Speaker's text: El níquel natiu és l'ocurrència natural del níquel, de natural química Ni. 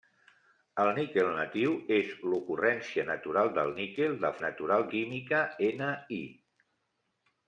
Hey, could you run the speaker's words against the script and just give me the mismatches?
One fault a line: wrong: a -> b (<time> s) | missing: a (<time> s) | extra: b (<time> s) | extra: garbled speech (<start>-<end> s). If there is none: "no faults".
no faults